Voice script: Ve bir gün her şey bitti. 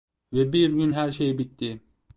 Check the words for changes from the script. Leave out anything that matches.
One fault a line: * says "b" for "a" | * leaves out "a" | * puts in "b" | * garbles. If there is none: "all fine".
all fine